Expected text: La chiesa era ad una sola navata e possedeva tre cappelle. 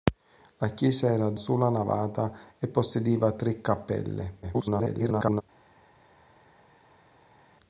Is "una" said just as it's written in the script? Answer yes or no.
no